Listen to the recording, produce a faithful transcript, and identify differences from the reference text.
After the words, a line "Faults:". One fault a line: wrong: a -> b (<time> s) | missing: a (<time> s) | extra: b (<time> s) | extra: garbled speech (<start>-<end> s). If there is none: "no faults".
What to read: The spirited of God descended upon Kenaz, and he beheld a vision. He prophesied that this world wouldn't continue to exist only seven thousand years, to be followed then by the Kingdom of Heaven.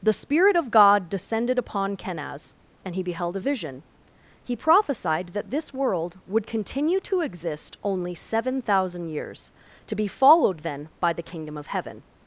The spirit of God descended upon Kenaz, and he beheld a vision. He prophesied that this world would continue to exist only seven thousand years, to be followed then by the Kingdom of Heaven.
Faults:
wrong: spirited -> spirit (0.1 s)
wrong: wouldn't -> would (6.2 s)